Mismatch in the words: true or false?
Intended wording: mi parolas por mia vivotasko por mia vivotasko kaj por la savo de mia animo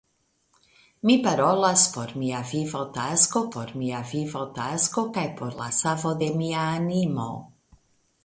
false